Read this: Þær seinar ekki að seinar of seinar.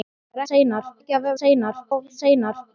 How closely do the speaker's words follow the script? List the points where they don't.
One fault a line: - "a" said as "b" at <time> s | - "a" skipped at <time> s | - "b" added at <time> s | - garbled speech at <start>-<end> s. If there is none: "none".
none